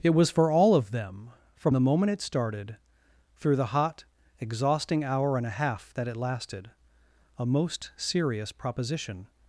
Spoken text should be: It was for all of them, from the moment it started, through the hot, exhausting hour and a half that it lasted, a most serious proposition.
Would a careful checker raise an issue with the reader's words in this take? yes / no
no